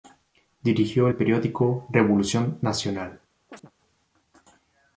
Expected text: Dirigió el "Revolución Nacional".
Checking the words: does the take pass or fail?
fail